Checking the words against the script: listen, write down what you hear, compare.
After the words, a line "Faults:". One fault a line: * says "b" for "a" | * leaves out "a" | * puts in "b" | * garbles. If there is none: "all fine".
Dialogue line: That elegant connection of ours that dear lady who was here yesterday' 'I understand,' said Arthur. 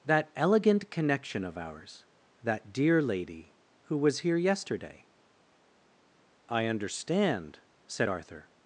That elegant connection of ours that dear lady who was here yesterday' 'I understand,' said Arthur.
Faults:
all fine